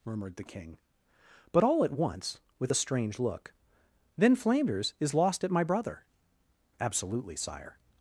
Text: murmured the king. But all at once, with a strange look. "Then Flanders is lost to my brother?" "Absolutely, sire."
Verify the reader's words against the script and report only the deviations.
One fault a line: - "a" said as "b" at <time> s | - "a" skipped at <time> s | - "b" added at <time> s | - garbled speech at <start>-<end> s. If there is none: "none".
- "to" said as "at" at 5.4 s